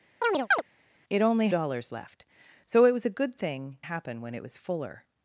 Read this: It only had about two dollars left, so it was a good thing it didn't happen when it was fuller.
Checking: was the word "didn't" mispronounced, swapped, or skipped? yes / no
yes